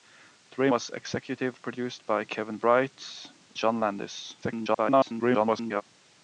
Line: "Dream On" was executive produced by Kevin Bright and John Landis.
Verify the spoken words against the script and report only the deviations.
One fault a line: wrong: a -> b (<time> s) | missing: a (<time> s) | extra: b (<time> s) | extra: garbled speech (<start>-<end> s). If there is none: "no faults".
missing: On (0.7 s)
missing: and (3.3 s)
extra: garbled speech (4.4-5.8 s)